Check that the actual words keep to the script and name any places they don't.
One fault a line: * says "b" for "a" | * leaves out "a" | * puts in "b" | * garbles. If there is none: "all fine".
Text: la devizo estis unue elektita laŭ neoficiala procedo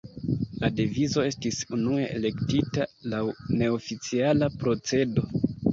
all fine